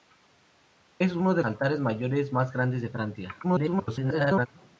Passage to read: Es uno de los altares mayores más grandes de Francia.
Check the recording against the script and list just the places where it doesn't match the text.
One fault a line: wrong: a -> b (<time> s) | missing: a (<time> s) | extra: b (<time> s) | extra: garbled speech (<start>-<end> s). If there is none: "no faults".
missing: los (1.4 s)
extra: garbled speech (3.4-4.5 s)